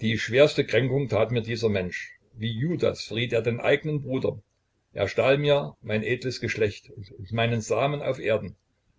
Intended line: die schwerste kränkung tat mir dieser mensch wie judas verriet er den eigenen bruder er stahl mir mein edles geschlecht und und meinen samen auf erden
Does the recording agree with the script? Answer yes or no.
yes